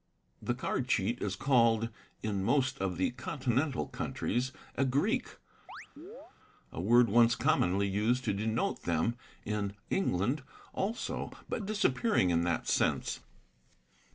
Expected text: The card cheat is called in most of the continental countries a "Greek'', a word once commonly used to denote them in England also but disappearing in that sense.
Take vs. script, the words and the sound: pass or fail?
fail